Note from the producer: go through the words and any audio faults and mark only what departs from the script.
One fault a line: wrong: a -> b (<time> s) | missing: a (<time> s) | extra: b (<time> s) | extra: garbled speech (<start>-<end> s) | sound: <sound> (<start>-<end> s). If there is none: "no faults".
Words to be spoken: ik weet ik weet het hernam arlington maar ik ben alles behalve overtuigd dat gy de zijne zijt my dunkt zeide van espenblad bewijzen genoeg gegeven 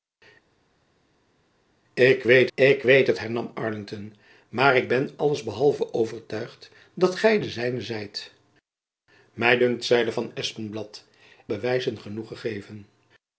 no faults